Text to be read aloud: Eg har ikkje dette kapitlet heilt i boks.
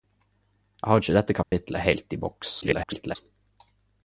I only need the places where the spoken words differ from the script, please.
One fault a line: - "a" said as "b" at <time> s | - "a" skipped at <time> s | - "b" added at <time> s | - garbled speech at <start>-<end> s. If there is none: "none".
- garbled speech at 2.6-3.2 s